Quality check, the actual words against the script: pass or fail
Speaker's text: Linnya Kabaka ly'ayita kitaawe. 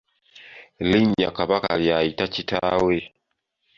pass